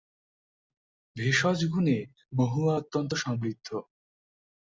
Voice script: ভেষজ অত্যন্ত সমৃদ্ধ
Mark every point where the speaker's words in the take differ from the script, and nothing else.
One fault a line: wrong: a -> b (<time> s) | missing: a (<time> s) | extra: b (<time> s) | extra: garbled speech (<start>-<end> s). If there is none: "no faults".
extra: গুণে মহুয়া (1.6 s)